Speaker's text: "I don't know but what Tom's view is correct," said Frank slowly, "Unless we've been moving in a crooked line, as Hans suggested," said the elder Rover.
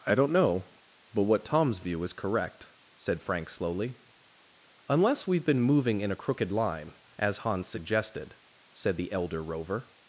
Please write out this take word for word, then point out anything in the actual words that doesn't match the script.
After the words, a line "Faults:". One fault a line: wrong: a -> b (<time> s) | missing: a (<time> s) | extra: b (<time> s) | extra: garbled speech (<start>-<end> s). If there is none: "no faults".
"I don't know but what Tom's view is correct," said Frank slowly, "Unless we've been moving in a crooked line, as Hans suggested," said the elder Rover.
Faults:
no faults